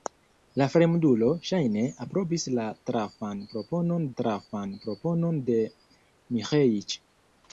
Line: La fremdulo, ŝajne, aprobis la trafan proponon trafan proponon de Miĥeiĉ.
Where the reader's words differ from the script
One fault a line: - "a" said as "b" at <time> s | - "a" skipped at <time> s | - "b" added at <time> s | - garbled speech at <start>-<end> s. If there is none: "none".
none